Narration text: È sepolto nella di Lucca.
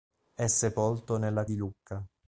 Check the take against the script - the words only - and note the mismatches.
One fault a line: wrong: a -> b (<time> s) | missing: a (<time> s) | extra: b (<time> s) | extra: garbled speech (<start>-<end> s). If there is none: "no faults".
no faults